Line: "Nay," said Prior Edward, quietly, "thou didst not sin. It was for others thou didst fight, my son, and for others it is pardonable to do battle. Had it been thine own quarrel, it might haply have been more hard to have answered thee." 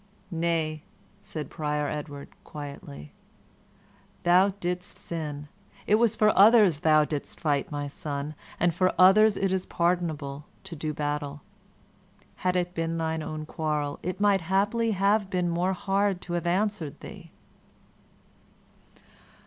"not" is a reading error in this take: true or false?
true